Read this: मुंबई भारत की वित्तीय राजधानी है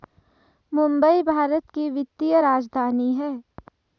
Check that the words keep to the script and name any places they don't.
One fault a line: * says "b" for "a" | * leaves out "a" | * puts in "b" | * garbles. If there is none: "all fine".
all fine